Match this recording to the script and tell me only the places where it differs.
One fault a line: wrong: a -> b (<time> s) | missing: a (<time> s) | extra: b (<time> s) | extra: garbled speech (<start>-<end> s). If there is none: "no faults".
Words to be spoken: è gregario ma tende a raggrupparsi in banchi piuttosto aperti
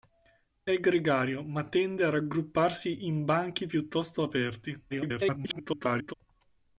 extra: garbled speech (4.9-6.1 s)